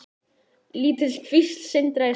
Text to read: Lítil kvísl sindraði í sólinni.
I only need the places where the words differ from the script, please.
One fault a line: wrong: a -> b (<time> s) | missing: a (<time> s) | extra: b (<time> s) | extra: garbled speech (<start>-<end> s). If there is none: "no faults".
no faults